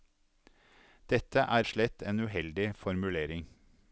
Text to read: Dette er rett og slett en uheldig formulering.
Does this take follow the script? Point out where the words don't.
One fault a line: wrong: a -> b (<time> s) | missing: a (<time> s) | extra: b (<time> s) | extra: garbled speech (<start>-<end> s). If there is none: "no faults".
missing: rett (1.6 s)